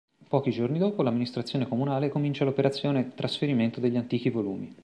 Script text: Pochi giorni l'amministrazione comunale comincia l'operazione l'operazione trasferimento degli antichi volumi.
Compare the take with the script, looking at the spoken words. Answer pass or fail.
fail